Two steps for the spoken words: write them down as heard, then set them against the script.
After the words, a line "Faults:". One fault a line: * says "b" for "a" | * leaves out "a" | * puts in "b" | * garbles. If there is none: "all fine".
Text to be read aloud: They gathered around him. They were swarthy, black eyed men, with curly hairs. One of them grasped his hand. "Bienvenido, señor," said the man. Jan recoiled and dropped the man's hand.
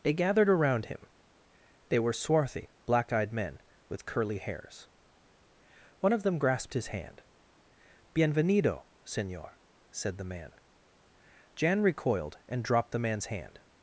They gathered around him. They were swarthy, black eyed men, with curly hairs. One of them grasped his hand. "Bienvenido, señor," said the man. Jan recoiled and dropped the man's hand.
Faults:
all fine